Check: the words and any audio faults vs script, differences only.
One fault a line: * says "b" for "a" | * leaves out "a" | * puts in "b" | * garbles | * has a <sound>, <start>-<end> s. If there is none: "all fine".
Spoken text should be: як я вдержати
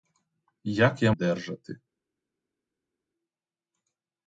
all fine